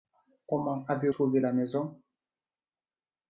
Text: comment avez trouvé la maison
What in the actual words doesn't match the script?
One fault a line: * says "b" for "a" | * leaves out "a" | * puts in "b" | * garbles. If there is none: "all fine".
all fine